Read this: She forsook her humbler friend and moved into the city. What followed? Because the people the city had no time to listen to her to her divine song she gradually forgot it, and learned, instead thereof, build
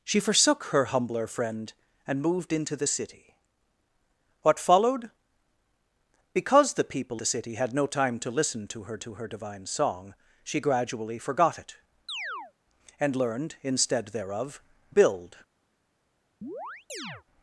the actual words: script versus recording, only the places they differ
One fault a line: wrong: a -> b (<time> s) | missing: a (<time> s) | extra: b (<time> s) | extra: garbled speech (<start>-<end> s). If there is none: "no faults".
no faults